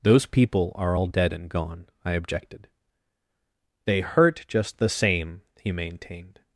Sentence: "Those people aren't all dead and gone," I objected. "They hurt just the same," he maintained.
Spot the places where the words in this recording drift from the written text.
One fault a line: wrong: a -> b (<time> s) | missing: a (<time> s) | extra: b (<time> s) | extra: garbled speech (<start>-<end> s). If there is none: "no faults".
wrong: aren't -> are (0.8 s)